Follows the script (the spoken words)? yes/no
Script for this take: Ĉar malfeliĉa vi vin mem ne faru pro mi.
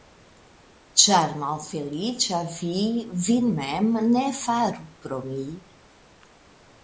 yes